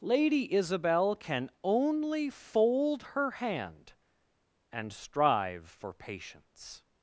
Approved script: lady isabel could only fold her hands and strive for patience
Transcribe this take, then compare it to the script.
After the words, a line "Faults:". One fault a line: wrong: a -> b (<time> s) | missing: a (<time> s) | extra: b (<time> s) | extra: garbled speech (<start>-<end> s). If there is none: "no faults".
lady isabel can only fold her hand and strive for patience
Faults:
wrong: could -> can (1.1 s)
wrong: hands -> hand (3.3 s)